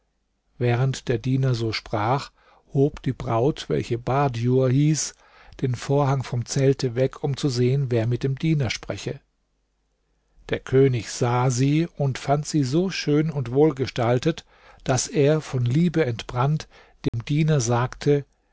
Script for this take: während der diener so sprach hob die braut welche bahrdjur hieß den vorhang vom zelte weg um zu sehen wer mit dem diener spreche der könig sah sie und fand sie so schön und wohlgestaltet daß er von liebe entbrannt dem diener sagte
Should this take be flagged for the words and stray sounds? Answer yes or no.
yes